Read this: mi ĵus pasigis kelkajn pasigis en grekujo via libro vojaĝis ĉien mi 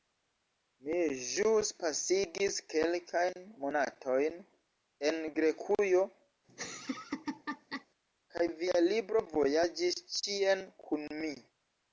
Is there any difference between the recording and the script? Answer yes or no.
yes